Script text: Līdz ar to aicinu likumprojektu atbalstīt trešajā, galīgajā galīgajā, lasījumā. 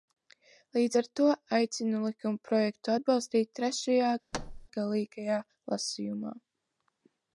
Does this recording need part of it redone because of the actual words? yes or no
yes